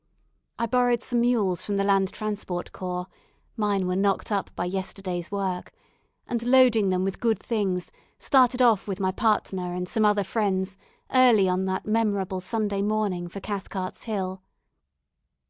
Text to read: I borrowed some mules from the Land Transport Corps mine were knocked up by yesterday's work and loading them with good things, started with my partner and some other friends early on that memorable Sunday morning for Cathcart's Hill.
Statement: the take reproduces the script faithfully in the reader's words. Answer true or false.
false